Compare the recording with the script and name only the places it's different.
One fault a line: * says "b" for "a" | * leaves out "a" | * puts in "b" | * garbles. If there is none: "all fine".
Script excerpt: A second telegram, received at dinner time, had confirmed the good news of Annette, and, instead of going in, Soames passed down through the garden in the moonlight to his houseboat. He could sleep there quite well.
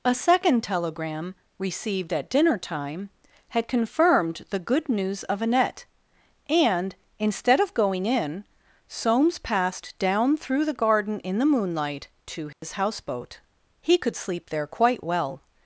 all fine